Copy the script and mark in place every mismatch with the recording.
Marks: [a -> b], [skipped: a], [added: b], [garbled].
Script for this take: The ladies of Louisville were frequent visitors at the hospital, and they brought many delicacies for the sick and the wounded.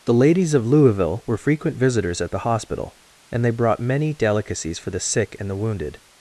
The ladies of Louisville were frequent visitors at the hospital, and they brought many delicacies for the sick and the wounded.